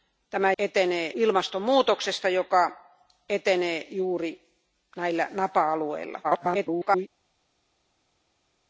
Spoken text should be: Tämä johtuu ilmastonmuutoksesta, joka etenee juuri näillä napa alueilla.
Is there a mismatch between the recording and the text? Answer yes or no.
yes